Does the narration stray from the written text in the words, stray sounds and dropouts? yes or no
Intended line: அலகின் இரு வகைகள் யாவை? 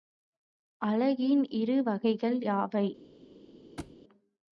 yes